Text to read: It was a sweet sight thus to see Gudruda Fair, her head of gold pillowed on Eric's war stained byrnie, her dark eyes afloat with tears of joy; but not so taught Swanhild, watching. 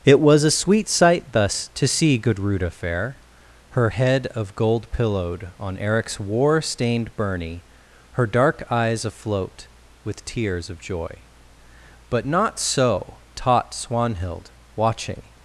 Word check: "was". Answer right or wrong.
right